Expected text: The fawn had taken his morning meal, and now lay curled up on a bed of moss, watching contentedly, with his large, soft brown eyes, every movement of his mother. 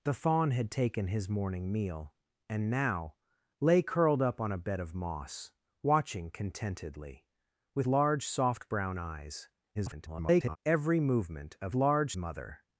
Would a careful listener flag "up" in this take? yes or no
no